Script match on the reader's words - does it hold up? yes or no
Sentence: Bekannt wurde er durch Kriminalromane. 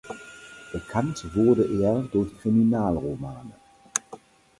yes